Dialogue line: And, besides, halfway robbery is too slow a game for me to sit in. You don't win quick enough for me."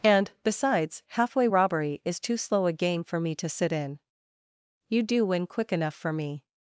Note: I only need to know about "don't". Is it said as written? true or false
false